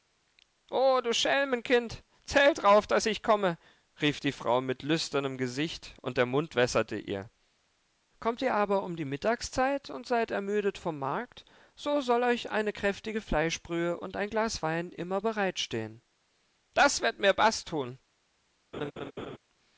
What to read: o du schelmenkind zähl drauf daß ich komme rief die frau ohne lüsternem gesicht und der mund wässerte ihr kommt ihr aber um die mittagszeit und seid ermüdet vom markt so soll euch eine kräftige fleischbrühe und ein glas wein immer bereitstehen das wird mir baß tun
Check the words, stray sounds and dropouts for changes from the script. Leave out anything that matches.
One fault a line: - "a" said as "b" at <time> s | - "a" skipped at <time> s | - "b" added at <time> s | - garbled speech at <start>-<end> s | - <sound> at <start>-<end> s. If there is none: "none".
- "ohne" said as "mit" at 4.6 s
- laugh at 18.7-19.4 s